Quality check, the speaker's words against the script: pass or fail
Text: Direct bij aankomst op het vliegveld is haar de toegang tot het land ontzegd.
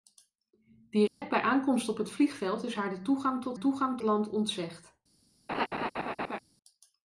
fail